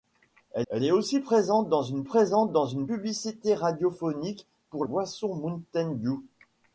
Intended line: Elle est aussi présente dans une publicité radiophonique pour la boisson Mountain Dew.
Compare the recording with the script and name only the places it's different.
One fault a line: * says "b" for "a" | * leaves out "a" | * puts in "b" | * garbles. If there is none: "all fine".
* puts in "elle"
* puts in "présente dans une"
* leaves out "la"